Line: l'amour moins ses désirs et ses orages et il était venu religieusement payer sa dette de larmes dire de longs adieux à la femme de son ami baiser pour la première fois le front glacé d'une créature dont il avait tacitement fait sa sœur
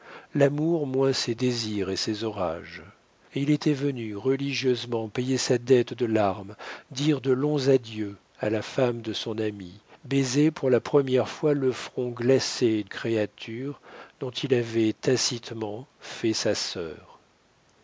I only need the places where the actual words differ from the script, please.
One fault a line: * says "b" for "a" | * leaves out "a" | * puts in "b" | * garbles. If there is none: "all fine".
* leaves out "d'une"